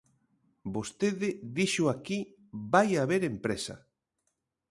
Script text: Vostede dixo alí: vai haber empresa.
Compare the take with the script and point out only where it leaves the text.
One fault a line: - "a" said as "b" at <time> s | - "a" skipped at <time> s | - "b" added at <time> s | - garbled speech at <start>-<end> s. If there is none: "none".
- "alí" said as "aquí" at 1.9 s